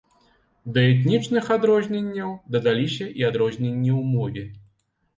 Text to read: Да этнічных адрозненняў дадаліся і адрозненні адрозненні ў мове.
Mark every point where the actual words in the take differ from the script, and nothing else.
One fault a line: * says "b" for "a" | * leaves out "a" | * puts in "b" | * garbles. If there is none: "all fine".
* leaves out "адрозненні"